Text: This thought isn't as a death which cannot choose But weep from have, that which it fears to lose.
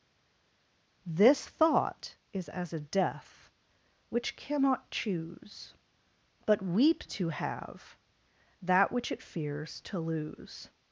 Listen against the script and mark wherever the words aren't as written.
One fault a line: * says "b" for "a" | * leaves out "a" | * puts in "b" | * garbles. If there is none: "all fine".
* says "is" for "isn't"
* says "to" for "from"